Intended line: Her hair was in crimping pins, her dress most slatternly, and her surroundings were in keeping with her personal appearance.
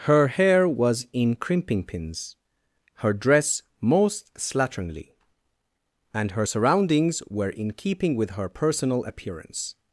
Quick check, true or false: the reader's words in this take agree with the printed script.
true